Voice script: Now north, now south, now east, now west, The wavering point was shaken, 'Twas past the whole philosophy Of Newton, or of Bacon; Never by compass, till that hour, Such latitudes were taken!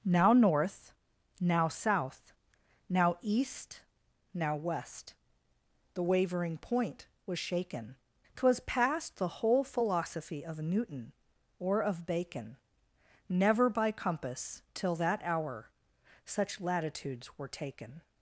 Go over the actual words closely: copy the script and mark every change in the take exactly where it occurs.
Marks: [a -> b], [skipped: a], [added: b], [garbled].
Now north, now south, now east, now west, The wavering point was shaken, 'Twas past the whole philosophy Of Newton, or of Bacon; Never by compass, till that hour, Such latitudes were taken!